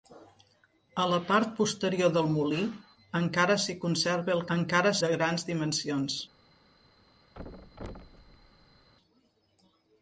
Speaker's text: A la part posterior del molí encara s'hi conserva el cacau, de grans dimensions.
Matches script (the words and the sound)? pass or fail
fail